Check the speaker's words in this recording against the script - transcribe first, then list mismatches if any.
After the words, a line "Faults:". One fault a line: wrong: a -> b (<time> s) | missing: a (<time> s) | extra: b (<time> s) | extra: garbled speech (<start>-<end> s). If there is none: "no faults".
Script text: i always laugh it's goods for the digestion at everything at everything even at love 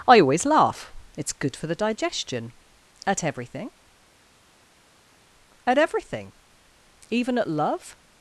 i always laugh it's good for the digestion at everything at everything even at love
Faults:
wrong: goods -> good (1.3 s)